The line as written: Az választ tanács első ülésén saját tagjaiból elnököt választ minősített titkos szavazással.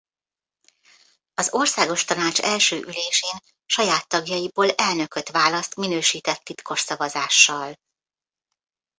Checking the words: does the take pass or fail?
fail